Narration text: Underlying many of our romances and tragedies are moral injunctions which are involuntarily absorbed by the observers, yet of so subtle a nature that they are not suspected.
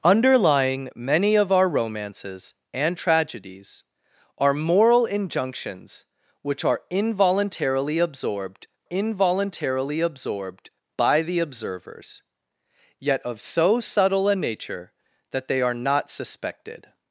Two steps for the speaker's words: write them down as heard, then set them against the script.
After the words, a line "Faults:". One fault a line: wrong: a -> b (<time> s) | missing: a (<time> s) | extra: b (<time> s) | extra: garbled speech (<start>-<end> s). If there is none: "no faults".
Underlying many of our romances and tragedies are moral injunctions which are involuntarily absorbed involuntarily absorbed by the observers, yet of so subtle a nature that they are not suspected.
Faults:
extra: involuntarily absorbed (8.9 s)